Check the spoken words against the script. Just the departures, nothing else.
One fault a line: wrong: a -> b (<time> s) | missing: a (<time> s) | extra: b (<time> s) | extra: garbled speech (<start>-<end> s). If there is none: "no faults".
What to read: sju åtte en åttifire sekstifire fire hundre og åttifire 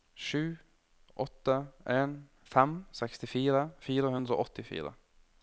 wrong: åttifire -> fem (2.5 s)